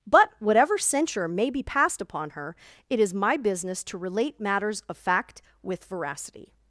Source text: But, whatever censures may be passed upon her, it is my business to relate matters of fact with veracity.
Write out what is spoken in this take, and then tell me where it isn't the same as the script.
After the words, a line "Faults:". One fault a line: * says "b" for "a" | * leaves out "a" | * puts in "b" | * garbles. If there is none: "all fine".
But, whatever censure may be passed upon her, it is my business to relate matters of fact with veracity.
Faults:
* says "censure" for "censures"